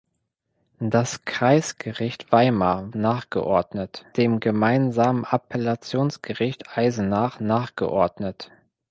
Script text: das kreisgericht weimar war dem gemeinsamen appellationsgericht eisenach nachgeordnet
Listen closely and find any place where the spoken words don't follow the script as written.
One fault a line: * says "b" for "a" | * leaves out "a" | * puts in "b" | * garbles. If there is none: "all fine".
* says "nachgeordnet" for "war"